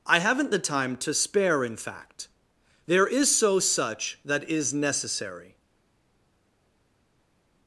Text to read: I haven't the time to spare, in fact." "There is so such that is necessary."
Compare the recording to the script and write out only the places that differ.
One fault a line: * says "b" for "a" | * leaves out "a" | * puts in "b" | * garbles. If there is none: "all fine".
all fine